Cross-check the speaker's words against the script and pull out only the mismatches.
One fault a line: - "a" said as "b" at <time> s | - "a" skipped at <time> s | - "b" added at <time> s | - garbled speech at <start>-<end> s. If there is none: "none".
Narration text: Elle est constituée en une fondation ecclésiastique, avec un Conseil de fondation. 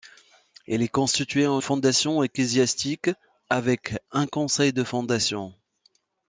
- "une" skipped at 1.6 s